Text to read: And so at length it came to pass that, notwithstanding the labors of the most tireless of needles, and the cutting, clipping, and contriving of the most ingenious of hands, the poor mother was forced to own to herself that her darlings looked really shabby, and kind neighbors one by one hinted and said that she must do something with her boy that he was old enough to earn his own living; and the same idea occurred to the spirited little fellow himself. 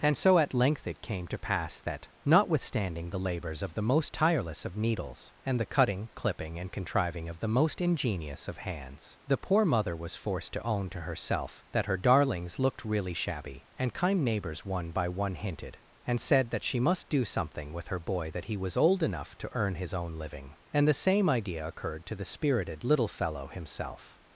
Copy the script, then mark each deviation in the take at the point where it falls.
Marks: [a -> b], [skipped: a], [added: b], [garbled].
And so at length it came to pass that, notwithstanding the labors of the most tireless of needles, and the cutting, clipping, and contriving of the most ingenious of hands, the poor mother was forced to own to herself that her darlings looked really shabby, and kind neighbors one by one hinted and said that she must do something with her boy that he was old enough to earn his own living; and the same idea occurred to the spirited little fellow himself.